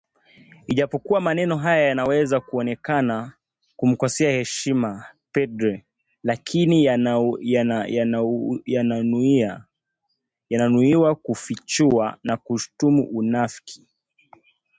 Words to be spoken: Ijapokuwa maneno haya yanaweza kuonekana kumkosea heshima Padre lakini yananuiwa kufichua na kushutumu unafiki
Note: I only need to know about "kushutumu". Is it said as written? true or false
true